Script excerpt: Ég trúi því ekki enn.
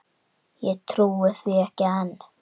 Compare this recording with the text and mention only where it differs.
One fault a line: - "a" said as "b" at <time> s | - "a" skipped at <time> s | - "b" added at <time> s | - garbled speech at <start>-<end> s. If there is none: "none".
none